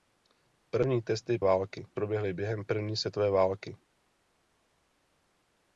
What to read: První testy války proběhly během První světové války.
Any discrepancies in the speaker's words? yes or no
no